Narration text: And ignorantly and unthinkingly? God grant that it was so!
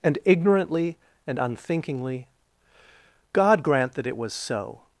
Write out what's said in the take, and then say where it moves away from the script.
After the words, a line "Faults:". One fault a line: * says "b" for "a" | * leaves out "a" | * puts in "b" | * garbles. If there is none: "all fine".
And ignorantly and unthinkingly? God grant that it was so!
Faults:
all fine